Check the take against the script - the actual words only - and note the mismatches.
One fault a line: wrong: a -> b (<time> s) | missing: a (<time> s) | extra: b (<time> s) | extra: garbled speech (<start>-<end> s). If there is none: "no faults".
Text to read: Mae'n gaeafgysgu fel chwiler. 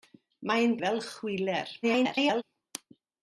missing: gaeafgysgu (0.7 s)
extra: garbled speech (1.8-2.4 s)